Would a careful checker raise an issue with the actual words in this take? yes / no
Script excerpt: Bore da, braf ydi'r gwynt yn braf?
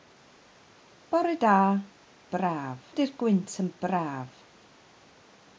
no